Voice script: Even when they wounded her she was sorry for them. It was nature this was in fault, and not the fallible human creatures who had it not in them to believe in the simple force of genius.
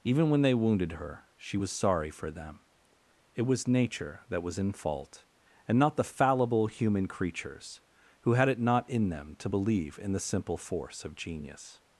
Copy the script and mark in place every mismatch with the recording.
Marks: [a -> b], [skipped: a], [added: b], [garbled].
Even when they wounded her she was sorry for them. It was nature [this -> that] was in fault, and not the fallible human creatures who had it not in them to believe in the simple force of genius.